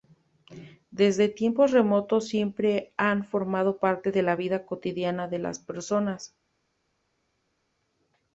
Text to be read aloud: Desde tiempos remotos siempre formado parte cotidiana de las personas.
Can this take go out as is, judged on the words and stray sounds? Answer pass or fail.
fail